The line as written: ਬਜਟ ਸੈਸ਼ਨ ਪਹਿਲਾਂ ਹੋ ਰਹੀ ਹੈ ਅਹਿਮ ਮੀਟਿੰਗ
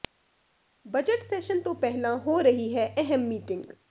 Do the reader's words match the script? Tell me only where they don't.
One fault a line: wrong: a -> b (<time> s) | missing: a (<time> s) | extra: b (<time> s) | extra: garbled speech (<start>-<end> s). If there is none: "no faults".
extra: ਤੋਂ (1.6 s)